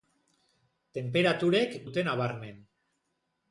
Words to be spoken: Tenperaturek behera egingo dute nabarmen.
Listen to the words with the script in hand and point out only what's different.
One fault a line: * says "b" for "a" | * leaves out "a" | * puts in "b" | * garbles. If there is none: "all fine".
* leaves out "behera egingo"